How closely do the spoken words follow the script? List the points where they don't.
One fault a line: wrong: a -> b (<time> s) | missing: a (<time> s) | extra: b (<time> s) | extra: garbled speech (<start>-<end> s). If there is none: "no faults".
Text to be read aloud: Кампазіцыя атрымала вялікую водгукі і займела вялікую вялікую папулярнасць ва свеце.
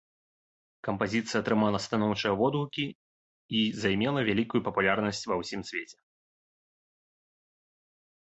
wrong: вялікую -> станоўчыя (1.9 s)
missing: вялікую (4.6 s)
extra: ўсім (5.4 s)